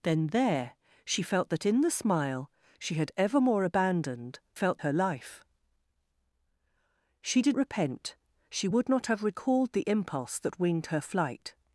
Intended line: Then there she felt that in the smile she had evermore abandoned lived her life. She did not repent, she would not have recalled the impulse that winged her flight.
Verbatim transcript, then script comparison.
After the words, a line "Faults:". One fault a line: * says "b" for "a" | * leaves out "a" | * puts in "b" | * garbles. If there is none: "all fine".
Then there she felt that in the smile she had evermore abandoned felt her life. She did repent, she would not have recalled the impulse that winged her flight.
Faults:
* says "felt" for "lived"
* leaves out "not"